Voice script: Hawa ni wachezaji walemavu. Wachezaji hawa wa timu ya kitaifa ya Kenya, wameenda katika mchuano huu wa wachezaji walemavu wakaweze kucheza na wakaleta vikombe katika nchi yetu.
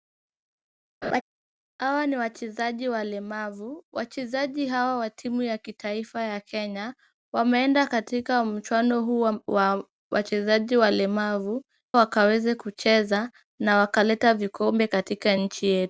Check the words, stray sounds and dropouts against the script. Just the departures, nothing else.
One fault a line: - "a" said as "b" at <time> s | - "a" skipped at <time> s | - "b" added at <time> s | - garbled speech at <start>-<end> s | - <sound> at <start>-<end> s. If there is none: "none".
- laugh at 1.0-1.2 s